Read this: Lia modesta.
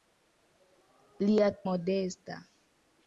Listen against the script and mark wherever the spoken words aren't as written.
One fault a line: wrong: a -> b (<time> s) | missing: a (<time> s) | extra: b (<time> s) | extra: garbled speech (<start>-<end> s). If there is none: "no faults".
no faults